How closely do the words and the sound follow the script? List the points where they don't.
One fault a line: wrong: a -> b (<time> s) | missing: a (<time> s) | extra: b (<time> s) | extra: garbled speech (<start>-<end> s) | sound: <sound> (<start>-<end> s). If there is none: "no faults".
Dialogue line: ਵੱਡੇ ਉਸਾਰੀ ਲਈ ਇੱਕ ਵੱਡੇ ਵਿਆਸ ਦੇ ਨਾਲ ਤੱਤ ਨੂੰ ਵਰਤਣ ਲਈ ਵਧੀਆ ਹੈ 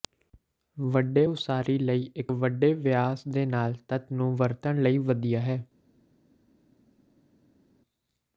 no faults